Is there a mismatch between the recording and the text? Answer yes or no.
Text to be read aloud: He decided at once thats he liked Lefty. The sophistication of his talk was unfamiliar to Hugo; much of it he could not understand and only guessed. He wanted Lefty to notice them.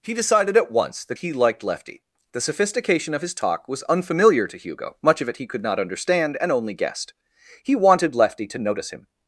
yes